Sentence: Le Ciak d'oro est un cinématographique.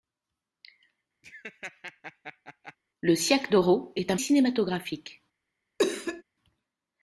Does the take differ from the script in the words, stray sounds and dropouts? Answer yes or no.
yes